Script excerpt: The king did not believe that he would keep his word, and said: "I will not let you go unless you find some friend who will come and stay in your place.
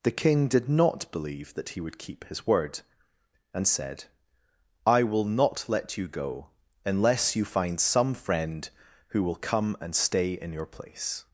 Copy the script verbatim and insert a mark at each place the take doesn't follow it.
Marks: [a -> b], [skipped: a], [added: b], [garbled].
The king did not believe that he would keep his word, and said: "I will not let you go unless you find some friend who will come and stay in your place.